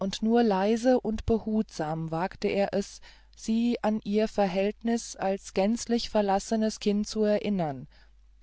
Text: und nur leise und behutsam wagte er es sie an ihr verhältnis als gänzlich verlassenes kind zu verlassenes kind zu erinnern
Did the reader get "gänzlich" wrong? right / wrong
right